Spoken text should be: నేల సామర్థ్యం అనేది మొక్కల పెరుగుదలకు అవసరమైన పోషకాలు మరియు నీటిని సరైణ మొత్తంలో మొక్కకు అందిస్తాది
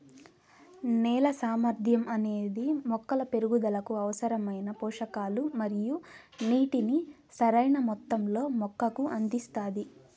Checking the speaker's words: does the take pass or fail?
pass